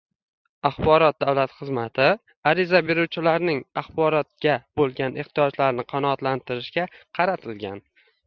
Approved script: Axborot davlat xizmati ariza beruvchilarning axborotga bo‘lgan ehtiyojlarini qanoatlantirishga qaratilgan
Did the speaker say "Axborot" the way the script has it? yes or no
yes